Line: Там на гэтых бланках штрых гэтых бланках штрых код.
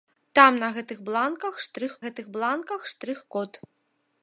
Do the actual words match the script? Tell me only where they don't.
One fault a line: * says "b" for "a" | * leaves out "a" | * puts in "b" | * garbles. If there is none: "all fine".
all fine